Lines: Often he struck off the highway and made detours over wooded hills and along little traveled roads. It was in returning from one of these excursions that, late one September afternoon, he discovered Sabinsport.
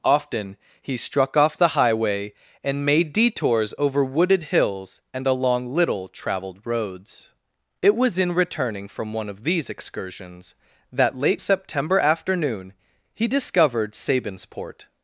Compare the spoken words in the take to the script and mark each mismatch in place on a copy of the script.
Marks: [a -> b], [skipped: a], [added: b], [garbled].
Often he struck off the highway and made detours over wooded hills and along little traveled roads. It was in returning from one of these excursions that, late [skipped: one] September afternoon, he discovered Sabinsport.